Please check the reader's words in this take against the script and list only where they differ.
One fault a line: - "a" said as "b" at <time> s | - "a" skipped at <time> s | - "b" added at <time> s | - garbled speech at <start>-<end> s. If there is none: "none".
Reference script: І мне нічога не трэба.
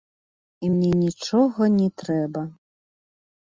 none